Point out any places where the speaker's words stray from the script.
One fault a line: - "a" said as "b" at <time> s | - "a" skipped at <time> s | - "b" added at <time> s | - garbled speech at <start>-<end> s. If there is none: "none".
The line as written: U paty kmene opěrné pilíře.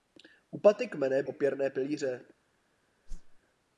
none